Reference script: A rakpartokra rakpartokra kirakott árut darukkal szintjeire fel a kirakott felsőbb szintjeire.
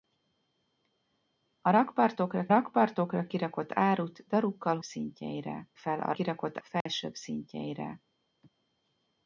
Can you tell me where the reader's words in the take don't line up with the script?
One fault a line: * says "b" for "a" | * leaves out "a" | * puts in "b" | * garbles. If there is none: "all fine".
all fine